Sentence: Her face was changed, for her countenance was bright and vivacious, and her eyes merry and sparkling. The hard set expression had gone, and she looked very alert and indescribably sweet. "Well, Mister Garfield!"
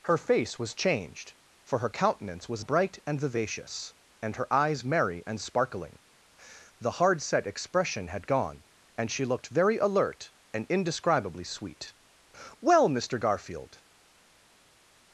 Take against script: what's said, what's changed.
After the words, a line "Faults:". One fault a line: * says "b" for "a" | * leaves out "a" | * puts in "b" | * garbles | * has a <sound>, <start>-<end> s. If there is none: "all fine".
Her face was changed, for her countenance was bright and vivacious, and her eyes merry and sparkling. The hard set expression had gone, and she looked very alert and indescribably sweet. "Well, Mister Garfield!"
Faults:
all fine